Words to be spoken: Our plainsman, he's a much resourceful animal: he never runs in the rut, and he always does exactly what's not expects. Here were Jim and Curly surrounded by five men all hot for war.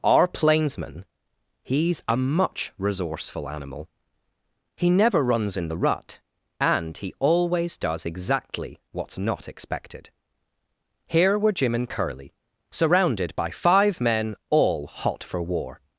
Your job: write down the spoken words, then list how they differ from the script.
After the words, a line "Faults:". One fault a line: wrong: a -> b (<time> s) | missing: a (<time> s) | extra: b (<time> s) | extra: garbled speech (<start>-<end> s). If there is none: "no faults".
Our plainsman, he's a much resourceful animal: he never runs in the rut, and he always does exactly what's not expected. Here were Jim and Curly surrounded by five men all hot for war.
Faults:
wrong: expects -> expected (9.5 s)